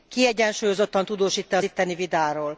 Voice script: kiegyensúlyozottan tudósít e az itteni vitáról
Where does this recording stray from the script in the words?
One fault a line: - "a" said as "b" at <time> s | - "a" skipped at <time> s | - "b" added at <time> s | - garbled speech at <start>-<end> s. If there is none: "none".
none